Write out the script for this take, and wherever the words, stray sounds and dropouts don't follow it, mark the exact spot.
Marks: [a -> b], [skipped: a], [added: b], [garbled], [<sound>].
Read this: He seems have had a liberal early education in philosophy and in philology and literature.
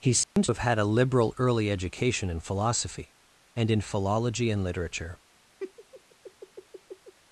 He seems [dropout] have had a liberal early education in philosophy and in philology and literature. [laugh]